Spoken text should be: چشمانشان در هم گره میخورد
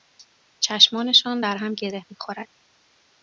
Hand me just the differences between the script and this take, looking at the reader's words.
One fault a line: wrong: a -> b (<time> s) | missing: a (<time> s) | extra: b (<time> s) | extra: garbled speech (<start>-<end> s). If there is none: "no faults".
no faults